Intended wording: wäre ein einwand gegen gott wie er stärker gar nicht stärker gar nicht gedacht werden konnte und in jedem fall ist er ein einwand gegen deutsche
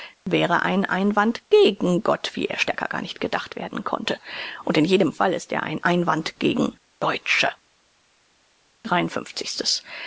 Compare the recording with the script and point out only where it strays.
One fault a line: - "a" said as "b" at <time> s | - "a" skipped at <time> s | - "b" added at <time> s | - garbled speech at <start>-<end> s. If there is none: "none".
- "stärker gar nicht" skipped at 3.2 s